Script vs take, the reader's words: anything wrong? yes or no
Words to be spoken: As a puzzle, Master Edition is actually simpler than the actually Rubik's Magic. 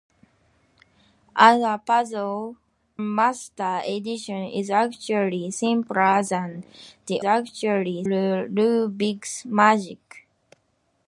no